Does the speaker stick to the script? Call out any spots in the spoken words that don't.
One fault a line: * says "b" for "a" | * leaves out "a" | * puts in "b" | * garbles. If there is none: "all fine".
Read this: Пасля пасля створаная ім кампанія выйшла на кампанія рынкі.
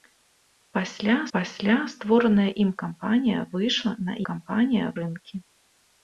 all fine